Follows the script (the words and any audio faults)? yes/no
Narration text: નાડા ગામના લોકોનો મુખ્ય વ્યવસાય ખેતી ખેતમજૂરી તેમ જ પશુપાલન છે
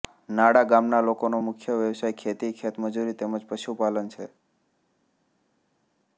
yes